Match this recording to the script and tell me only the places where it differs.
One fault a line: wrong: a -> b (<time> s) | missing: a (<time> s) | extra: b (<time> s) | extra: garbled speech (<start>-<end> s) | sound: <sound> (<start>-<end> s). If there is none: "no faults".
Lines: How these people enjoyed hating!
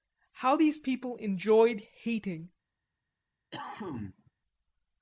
sound: cough (3.5-4.3 s)